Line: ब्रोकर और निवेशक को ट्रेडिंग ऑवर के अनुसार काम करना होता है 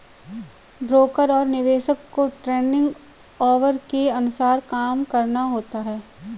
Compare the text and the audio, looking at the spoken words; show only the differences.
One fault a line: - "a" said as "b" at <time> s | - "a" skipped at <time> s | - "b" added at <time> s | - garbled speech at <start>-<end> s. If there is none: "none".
none